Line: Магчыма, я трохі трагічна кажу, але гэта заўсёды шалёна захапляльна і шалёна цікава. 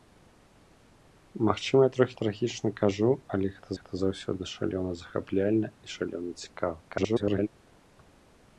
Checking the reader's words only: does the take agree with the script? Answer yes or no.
no